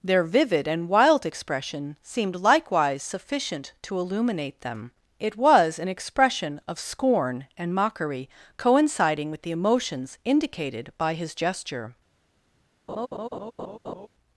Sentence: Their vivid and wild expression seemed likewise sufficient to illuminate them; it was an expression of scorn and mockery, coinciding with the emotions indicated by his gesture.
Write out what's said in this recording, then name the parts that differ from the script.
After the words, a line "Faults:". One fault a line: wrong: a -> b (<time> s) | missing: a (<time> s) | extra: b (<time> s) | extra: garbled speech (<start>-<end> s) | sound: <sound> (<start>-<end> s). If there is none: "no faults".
Their vivid and wild expression seemed likewise sufficient to illuminate them; it was an expression of scorn and mockery, coinciding with the emotions indicated by his gesture.
Faults:
sound: laugh (12.9-14.1 s)